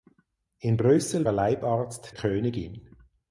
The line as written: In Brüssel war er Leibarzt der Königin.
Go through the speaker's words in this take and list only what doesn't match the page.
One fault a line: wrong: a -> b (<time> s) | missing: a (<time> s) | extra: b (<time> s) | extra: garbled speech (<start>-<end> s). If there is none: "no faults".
missing: war (1.3 s)
missing: der (2.2 s)